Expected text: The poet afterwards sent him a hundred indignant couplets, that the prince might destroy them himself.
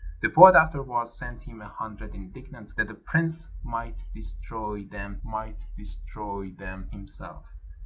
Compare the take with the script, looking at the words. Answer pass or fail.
fail